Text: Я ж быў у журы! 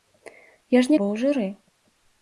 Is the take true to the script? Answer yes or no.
yes